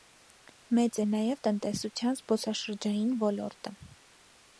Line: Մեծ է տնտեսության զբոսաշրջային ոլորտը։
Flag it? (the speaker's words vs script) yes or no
yes